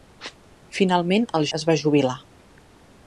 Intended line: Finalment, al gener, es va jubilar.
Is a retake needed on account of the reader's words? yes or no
yes